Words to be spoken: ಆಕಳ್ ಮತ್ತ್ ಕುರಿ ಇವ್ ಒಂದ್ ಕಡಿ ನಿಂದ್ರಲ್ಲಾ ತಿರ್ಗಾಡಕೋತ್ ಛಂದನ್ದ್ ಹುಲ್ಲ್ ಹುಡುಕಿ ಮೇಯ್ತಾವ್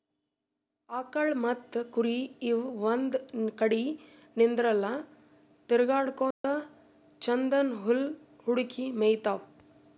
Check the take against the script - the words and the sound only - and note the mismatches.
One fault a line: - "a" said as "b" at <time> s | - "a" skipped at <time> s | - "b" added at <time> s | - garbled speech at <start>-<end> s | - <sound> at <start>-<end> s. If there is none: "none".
- dropout at 6.3-6.4 s